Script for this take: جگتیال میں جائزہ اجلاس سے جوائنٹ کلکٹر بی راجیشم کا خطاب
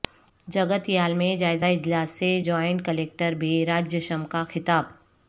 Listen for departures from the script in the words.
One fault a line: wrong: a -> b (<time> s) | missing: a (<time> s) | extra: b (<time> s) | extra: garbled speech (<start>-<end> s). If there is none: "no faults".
no faults